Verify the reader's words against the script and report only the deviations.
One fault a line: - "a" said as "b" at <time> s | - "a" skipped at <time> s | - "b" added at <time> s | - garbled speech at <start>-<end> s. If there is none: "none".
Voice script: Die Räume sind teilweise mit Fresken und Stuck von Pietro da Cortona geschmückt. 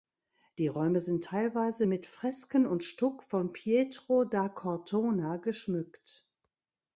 none